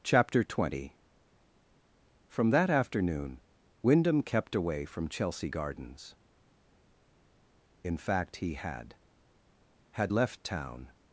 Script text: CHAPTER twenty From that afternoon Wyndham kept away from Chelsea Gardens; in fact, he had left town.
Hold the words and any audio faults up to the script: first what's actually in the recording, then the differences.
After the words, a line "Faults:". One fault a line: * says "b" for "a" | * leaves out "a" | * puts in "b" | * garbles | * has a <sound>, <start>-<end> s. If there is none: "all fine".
CHAPTER twenty From that afternoon Wyndham kept away from Chelsea Gardens; in fact, he had had left town.
Faults:
* puts in "had"